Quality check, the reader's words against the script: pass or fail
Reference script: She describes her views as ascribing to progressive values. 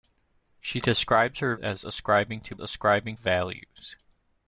fail